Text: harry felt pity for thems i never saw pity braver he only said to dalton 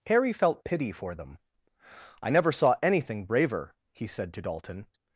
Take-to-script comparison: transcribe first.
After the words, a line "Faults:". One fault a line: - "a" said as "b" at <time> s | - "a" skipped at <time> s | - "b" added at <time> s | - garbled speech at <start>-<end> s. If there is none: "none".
harry felt pity for them i never saw anything braver he said to dalton
Faults:
- "thems" said as "them" at 1.1 s
- "pity" said as "anything" at 2.8 s
- "only" skipped at 4.1 s